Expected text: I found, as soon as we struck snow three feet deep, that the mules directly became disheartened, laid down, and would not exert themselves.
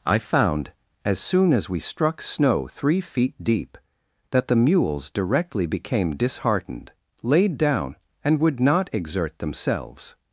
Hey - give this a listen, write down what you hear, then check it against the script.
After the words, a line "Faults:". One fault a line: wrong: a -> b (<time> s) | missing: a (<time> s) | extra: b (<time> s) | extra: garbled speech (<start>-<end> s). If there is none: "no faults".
I found, as soon as we struck snow three feet deep, that the mules directly became disheartened, laid down, and would not exert themselves.
Faults:
no faults